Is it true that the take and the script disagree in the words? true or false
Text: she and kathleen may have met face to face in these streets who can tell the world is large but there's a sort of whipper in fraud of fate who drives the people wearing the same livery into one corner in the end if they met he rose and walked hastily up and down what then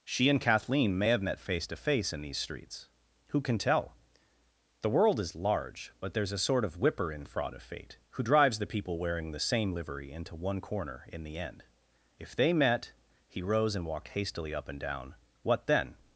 false